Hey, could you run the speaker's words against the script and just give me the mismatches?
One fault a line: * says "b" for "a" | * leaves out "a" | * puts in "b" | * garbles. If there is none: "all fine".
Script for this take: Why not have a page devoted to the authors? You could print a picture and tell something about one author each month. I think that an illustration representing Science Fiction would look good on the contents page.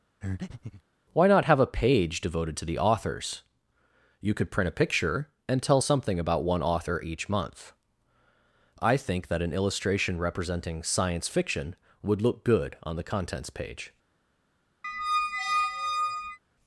all fine